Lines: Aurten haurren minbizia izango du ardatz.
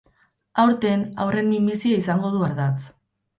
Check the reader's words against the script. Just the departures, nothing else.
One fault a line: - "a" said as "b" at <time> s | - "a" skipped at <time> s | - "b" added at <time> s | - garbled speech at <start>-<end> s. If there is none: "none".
none